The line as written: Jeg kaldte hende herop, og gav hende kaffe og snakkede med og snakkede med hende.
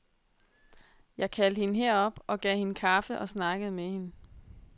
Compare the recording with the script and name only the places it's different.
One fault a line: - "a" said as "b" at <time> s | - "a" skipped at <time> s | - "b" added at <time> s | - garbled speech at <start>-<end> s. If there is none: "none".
- "og snakkede med" skipped at 3.8 s